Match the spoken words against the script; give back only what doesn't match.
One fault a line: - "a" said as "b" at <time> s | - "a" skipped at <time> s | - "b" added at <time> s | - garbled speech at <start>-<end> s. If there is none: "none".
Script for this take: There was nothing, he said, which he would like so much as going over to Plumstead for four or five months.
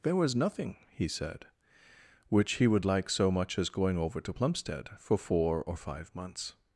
none